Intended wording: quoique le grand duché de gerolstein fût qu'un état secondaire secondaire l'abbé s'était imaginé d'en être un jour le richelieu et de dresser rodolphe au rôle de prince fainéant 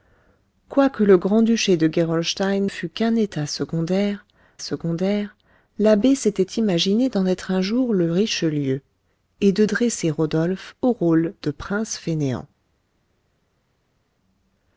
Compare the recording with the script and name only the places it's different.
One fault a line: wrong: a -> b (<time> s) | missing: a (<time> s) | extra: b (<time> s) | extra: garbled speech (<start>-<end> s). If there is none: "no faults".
no faults